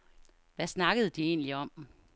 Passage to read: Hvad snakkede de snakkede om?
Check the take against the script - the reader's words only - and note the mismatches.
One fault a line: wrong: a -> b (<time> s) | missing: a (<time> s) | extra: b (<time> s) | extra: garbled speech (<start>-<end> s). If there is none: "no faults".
wrong: snakkede -> egentlig (1.2 s)